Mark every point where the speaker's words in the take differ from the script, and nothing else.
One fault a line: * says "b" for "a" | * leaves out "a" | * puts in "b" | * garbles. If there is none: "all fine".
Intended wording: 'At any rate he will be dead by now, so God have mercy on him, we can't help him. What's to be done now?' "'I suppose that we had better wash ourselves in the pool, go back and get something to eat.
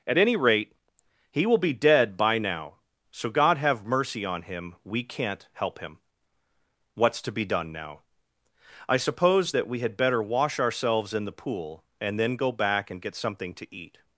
* puts in "and then"